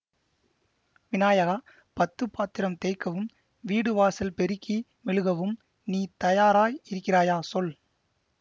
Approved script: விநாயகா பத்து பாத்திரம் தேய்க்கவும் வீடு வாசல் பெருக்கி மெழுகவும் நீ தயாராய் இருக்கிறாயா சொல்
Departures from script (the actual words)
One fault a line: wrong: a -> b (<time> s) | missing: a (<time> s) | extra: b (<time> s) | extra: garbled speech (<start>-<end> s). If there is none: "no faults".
no faults